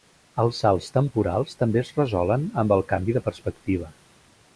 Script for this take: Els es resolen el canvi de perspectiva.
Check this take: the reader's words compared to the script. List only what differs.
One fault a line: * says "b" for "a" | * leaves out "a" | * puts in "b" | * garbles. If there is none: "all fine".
* puts in "salts temporals també"
* puts in "amb"